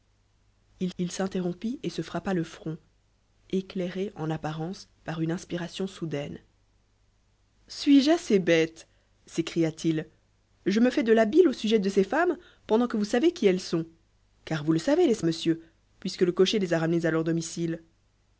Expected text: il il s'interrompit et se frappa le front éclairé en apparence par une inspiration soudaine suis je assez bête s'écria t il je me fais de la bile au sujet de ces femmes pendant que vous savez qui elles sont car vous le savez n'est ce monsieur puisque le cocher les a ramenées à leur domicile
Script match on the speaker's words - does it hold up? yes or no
yes